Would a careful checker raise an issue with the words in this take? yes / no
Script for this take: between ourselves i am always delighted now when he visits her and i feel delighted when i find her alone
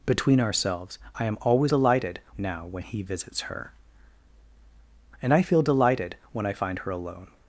no